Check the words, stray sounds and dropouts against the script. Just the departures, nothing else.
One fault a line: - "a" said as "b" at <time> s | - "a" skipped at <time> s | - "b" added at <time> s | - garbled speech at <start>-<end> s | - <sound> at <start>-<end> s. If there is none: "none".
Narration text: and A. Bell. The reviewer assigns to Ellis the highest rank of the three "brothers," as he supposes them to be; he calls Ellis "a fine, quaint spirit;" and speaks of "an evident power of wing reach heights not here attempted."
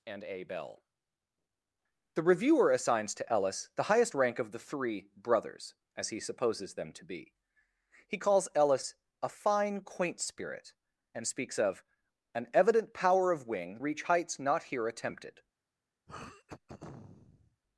- throat clearing at 16.1-17.6 s